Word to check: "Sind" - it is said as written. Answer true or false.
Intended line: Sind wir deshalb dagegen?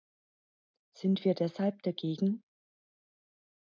true